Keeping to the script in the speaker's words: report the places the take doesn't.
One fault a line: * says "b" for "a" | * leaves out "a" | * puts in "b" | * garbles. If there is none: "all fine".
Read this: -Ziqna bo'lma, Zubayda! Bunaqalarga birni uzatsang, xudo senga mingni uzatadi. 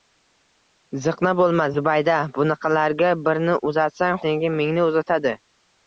* leaves out "xudo"